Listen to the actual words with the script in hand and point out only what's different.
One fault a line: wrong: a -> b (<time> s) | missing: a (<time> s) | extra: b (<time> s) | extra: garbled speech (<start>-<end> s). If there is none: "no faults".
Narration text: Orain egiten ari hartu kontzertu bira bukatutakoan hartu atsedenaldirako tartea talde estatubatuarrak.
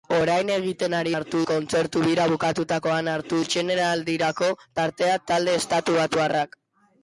no faults